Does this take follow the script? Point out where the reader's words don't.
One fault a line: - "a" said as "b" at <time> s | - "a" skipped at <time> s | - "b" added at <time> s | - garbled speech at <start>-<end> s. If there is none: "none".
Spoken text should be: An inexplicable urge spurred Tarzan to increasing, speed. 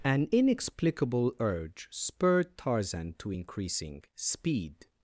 none